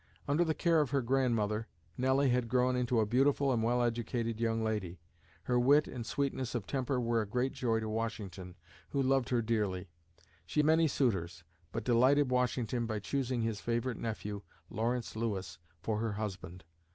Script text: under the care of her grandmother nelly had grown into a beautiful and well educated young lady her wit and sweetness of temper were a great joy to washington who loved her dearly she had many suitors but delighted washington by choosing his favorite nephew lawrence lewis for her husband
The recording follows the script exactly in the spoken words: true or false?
false